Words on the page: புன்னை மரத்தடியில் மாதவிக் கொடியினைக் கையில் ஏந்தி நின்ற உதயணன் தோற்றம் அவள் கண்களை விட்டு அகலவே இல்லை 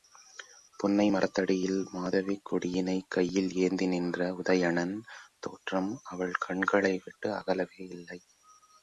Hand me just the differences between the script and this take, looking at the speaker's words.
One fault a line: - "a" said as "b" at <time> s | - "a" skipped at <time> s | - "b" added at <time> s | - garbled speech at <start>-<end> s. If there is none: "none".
none